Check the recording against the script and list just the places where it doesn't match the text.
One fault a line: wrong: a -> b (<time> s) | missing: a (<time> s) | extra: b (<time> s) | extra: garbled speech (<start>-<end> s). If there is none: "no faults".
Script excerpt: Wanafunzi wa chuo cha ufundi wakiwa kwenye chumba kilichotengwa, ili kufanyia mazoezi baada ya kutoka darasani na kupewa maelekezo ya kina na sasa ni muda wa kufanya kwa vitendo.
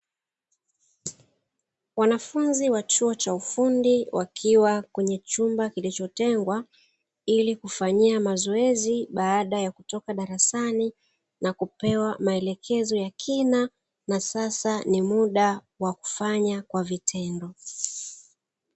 no faults